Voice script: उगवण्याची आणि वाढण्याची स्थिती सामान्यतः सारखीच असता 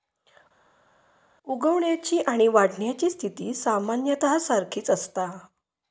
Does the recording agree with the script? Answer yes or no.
yes